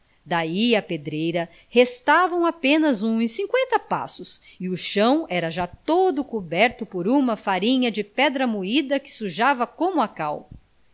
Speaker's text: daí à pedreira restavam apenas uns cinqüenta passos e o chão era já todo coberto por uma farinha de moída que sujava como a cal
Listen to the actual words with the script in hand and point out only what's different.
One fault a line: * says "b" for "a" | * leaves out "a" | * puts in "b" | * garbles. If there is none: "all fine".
* puts in "pedra"